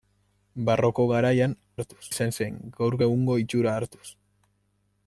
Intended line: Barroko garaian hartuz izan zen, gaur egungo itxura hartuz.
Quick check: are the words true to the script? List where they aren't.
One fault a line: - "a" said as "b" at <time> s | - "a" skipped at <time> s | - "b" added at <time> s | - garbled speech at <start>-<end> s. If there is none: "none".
none